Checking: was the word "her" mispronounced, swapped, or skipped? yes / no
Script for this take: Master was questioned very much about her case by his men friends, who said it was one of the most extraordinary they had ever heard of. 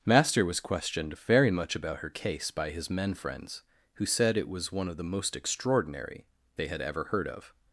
no